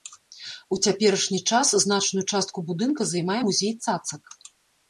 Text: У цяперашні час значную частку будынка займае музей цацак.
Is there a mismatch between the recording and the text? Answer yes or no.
no